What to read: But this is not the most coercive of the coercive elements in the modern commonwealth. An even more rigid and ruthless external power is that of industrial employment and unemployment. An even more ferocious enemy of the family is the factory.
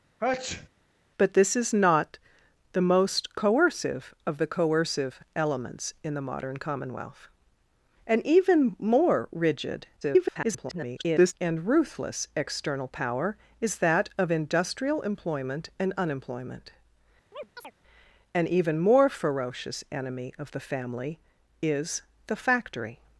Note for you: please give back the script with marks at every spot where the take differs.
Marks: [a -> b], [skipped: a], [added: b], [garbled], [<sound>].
[sneeze] But this is not the most coercive of the coercive elements in the modern commonwealth. An even more rigid [garbled] and ruthless external power is that of industrial employment and unemployment. [chirp] An even more ferocious enemy of the family is the factory.